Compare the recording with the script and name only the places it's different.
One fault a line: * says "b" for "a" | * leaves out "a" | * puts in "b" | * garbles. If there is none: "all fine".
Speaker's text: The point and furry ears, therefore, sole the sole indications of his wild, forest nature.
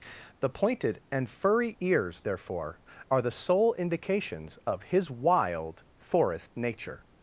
* says "pointed" for "point"
* says "are" for "sole"